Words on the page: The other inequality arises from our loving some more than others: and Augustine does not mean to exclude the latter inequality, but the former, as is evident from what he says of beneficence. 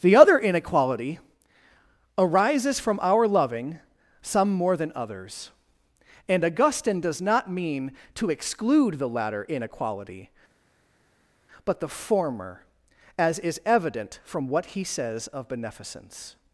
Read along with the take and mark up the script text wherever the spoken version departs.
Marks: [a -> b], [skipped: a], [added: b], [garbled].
The other inequality arises from our loving some more than others: and Augustine does not mean to exclude the latter inequality, but the former, as is evident from what he says of beneficence.